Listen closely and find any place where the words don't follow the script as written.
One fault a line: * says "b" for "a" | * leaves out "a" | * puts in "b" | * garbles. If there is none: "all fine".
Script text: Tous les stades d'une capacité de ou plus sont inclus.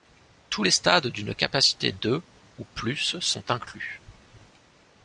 all fine